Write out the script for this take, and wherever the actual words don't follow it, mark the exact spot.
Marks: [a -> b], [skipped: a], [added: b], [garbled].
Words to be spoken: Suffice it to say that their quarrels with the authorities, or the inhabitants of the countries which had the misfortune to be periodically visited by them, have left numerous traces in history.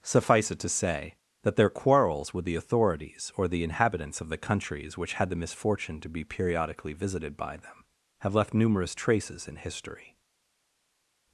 Suffice it to say that their quarrels with the authorities, or the inhabitants of the countries which had the misfortune to be periodically visited by them, have left numerous traces in history.